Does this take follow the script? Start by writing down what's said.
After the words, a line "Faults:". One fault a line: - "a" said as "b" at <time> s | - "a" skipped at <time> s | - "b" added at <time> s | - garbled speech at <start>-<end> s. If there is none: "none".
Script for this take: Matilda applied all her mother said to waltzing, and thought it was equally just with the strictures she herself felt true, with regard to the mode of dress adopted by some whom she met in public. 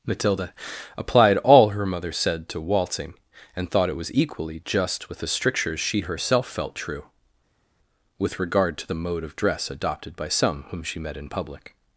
Matilda applied all her mother said to waltzing, and thought it was equally just with the strictures she herself felt true, with regard to the mode of dress adopted by some whom she met in public.
Faults:
none